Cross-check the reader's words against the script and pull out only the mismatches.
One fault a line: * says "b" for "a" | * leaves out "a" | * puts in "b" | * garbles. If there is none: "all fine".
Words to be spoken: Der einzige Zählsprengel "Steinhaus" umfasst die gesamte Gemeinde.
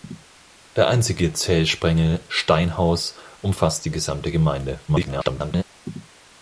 * garbles